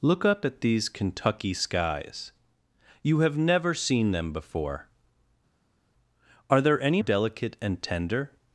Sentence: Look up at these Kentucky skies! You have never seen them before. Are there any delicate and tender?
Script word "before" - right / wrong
right